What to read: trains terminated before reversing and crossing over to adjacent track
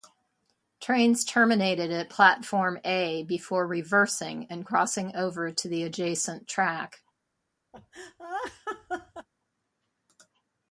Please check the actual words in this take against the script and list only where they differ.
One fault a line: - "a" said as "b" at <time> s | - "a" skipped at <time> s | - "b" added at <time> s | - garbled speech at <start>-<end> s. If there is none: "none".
- "at platform a" added at 1.9 s
- "the" added at 5.7 s